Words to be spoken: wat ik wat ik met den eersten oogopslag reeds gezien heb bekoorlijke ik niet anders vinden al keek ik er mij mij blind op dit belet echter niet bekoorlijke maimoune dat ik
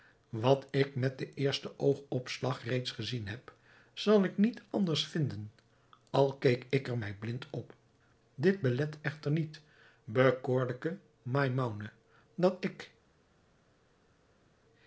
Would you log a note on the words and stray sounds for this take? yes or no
yes